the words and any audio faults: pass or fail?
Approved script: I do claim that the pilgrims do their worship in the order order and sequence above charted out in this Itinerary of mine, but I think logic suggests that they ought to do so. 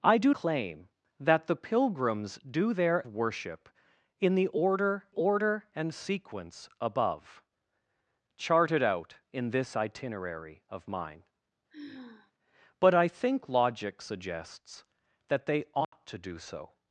fail